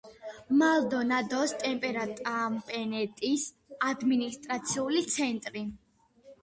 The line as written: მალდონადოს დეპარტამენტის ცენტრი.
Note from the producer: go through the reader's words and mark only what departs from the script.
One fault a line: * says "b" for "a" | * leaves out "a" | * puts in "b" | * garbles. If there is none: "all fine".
* puts in "ადმინისტრაციული"